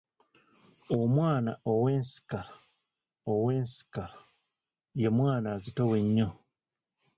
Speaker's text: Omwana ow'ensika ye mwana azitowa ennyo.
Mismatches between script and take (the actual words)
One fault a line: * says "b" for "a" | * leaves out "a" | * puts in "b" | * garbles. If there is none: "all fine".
* puts in "ow'ensika"